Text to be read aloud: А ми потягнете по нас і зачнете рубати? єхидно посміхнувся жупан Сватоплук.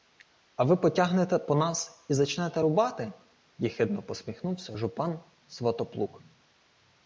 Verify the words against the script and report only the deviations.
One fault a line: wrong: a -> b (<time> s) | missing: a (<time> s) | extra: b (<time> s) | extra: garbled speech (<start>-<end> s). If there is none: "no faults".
wrong: ми -> ви (0.6 s)